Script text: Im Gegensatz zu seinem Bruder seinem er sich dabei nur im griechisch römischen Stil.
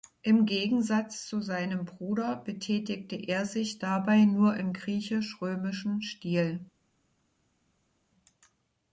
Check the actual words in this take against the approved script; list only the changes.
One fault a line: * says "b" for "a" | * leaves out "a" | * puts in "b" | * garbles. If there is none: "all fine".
* says "betätigte" for "seinem"